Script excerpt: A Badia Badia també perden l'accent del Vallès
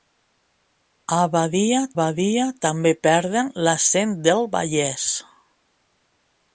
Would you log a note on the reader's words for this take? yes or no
no